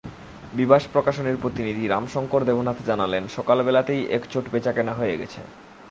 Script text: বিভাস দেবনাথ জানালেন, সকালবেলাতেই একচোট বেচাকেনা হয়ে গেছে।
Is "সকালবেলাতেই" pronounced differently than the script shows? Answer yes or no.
no